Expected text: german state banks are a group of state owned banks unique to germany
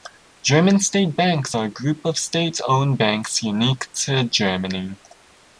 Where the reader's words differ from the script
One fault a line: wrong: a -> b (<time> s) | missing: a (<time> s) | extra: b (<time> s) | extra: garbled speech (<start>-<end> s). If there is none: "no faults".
no faults